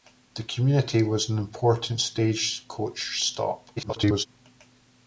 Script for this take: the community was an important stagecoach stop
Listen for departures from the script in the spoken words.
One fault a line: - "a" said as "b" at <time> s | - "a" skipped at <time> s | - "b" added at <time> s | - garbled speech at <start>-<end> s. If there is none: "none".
- garbled speech at 3.8-4.3 s